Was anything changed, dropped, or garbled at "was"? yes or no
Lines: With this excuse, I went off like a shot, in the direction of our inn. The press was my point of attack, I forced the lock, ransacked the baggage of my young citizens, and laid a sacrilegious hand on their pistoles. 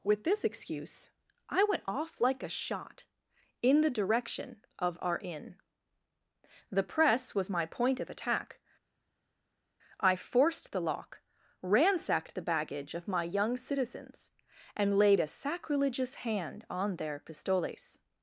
no